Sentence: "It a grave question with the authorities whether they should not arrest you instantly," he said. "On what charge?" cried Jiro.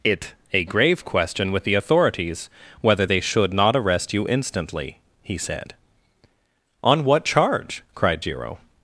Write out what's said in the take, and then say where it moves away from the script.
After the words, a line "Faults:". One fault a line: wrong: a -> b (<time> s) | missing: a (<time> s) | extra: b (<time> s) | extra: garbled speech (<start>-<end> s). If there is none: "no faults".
"It a grave question with the authorities whether they should not arrest you instantly," he said. "On what charge?" cried Jiro.
Faults:
no faults